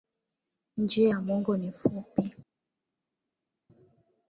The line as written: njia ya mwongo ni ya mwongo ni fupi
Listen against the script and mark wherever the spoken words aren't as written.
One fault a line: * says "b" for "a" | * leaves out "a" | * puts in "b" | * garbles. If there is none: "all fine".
* leaves out "ya mwongo ni"